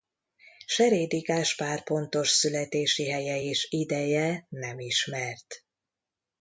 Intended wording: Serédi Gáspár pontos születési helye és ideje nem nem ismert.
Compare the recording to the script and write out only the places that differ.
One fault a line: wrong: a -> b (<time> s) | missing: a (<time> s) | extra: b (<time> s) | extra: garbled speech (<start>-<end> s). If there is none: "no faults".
missing: nem (4.8 s)